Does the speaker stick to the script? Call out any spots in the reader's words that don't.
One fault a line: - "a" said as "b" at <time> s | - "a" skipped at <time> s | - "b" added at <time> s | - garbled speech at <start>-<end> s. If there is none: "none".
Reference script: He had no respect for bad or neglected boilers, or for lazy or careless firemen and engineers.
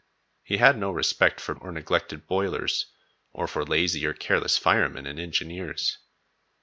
- "bad" skipped at 1.5 s